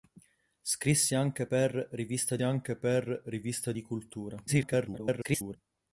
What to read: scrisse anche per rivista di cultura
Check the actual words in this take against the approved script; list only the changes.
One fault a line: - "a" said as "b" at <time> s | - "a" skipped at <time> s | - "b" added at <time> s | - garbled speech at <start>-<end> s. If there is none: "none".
- "anche per rivista" added at 2.4 s
- garbled speech at 4.5-5.6 s